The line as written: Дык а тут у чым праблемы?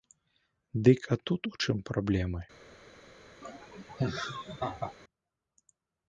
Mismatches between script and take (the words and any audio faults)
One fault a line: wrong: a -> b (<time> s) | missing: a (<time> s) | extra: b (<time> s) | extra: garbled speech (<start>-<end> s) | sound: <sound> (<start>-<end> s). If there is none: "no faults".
sound: laugh (3.4-4.9 s)